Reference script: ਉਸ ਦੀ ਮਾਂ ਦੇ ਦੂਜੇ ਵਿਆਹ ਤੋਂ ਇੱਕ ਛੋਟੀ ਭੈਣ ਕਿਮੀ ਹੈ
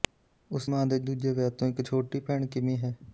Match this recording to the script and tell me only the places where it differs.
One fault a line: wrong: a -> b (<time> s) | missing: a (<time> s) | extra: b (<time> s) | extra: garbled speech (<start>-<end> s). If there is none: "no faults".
missing: ਦੀ (0.7 s)